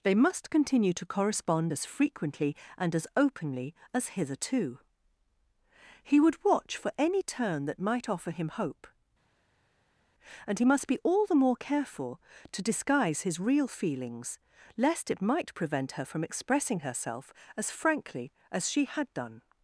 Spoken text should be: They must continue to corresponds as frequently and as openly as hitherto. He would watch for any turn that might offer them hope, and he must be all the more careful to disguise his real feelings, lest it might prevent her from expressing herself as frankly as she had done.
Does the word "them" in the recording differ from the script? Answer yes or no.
yes